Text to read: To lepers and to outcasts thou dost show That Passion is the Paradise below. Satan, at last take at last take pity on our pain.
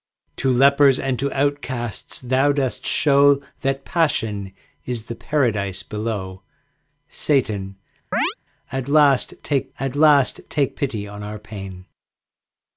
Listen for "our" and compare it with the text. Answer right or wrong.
right